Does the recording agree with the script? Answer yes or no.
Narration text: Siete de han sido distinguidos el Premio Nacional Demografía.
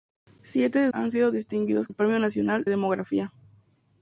yes